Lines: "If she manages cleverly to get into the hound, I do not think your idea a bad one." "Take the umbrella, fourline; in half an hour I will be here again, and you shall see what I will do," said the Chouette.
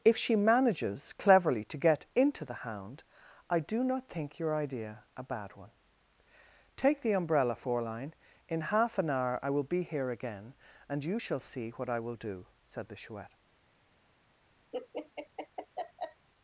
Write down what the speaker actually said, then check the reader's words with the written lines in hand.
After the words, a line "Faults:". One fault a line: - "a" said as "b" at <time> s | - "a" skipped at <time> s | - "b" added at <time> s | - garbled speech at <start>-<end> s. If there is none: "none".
"If she manages cleverly to get into the hound, I do not think your idea a bad one." "Take the umbrella, fourline; in half an hour I will be here again, and you shall see what I will do," said the Chouette.
Faults:
none